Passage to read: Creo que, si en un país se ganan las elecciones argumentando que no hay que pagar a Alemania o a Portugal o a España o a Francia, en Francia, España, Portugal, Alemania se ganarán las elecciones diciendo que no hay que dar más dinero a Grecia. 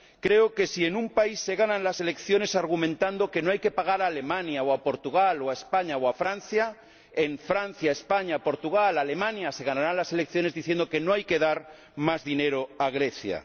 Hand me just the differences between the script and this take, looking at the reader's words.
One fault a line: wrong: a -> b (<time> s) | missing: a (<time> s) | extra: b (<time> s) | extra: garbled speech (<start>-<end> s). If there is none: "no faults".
no faults